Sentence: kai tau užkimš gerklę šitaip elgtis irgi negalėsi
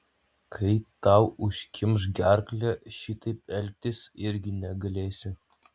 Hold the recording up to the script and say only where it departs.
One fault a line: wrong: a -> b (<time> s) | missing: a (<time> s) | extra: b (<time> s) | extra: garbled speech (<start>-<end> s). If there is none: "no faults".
no faults